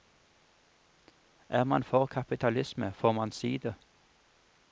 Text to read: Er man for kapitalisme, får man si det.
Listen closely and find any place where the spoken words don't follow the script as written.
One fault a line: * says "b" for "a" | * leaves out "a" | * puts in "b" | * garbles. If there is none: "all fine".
all fine